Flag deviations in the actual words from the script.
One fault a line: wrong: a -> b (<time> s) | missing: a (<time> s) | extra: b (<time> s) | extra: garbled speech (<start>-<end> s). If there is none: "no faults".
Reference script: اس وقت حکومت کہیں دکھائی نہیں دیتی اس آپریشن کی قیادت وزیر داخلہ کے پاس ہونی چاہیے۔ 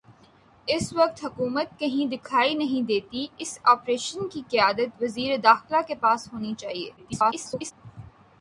extra: garbled speech (7.0-7.7 s)